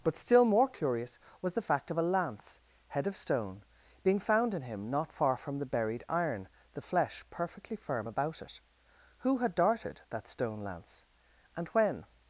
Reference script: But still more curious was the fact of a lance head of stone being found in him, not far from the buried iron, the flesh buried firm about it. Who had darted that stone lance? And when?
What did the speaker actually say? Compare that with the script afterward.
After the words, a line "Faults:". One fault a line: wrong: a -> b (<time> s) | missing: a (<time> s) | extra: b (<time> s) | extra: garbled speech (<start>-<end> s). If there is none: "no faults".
But still more curious was the fact of a lance head of stone being found in him, not far from the buried iron, the flesh perfectly firm about it. Who had darted that stone lance? And when?
Faults:
wrong: buried -> perfectly (7.3 s)